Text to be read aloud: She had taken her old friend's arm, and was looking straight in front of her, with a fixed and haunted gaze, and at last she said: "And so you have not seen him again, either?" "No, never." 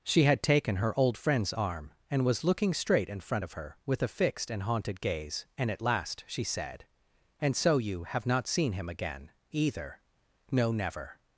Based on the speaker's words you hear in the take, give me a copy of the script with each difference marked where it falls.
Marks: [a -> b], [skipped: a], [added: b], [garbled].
She had taken her old friend's arm, and was looking straight in front of her, with a fixed and haunted gaze, and at last she said: "And so you have not seen him again, either?" "No, never."